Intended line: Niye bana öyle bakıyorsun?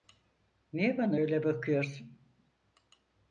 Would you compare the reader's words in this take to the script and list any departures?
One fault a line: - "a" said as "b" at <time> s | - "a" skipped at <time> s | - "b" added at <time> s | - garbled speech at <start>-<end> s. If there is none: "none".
none